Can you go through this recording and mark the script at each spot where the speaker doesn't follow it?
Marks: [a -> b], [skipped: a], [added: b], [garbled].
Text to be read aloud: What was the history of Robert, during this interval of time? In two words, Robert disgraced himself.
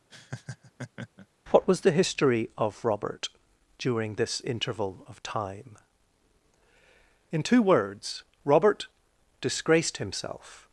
What was the history of Robert, during this interval of time? In two words, Robert disgraced himself.